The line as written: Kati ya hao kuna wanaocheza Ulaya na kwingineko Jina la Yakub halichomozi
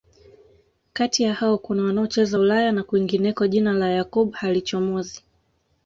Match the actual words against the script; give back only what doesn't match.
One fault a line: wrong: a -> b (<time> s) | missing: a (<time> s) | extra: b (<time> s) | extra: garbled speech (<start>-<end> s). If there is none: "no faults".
no faults